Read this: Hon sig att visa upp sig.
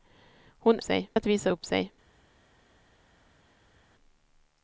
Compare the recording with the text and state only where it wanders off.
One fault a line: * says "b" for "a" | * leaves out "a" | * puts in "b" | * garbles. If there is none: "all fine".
all fine